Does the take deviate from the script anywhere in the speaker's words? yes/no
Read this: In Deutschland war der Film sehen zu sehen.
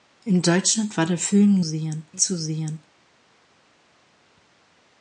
no